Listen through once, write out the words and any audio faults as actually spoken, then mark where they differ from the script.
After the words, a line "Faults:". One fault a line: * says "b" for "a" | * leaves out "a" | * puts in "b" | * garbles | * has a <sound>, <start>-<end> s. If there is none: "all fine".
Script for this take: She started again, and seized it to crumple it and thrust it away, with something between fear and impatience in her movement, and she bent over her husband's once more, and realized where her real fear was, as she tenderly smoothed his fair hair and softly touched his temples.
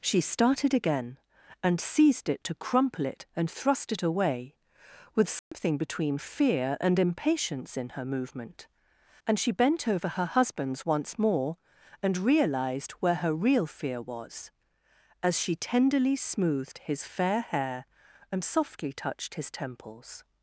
She started again, and seized it to crumple it and thrust it away, with something between fear and impatience in her movement, and she bent over her husband's once more, and realized where her real fear was, as she tenderly smoothed his fair hair and softly touched his temples.
Faults:
* has a dropout, 5.4-5.5 s